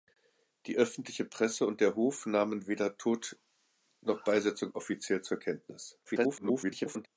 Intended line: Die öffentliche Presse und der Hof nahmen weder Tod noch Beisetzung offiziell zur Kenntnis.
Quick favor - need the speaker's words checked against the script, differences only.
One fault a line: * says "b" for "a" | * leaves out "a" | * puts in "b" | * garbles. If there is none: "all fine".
* garbles